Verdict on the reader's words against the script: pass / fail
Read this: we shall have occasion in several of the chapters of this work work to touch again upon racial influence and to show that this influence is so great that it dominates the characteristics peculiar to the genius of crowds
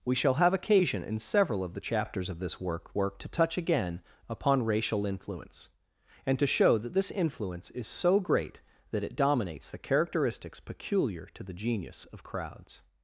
pass